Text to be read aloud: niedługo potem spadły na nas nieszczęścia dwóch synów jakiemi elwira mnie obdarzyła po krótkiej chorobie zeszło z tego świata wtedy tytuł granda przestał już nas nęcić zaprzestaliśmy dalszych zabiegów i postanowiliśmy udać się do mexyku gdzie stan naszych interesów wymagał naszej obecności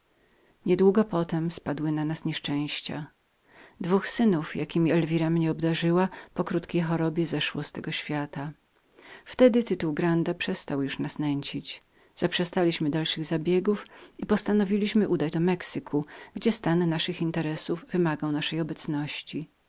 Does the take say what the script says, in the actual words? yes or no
no